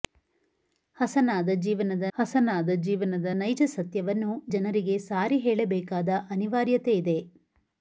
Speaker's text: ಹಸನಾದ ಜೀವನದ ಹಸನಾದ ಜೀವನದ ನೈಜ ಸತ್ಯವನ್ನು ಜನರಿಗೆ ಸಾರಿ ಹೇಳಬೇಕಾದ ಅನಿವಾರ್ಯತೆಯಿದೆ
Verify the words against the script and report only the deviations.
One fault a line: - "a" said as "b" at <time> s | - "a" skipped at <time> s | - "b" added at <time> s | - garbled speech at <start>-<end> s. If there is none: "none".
none